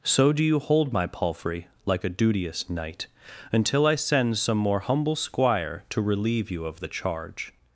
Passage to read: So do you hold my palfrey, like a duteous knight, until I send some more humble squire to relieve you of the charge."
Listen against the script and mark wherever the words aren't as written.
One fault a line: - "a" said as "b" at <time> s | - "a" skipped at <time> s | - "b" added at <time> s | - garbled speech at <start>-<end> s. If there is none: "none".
none